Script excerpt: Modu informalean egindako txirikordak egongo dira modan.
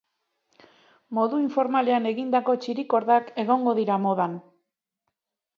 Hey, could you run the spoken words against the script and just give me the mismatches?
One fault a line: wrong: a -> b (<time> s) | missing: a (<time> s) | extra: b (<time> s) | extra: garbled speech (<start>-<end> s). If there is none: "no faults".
no faults